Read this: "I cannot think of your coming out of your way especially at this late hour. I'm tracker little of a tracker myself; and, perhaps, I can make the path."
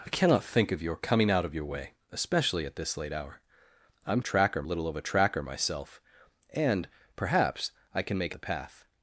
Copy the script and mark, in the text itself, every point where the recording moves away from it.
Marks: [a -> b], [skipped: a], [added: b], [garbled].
"I cannot think of your coming out of your way especially at this late hour. I'm tracker little of a tracker myself; and, perhaps, I can make the path."